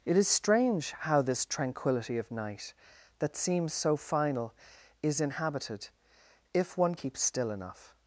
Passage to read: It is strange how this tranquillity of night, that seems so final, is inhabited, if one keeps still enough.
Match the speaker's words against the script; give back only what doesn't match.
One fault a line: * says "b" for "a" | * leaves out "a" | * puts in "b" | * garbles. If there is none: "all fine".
all fine